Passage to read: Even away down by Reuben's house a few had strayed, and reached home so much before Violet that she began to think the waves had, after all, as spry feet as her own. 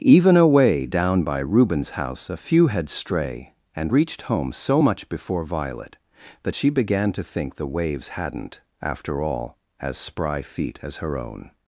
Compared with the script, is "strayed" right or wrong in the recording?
wrong